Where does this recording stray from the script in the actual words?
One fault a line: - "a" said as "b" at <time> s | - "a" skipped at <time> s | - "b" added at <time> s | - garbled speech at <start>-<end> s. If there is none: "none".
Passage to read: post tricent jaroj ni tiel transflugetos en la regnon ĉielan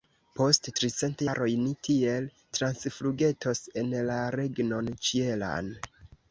none